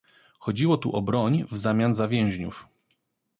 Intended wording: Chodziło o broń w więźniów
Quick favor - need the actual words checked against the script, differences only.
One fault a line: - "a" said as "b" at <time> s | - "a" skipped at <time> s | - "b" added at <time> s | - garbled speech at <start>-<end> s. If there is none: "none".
- "tu" added at 0.8 s
- "zamian za" added at 1.6 s